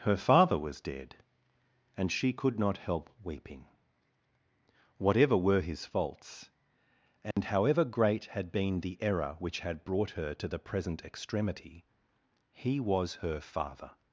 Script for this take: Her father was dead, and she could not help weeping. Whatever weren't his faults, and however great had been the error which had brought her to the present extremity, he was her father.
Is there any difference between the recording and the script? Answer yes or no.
yes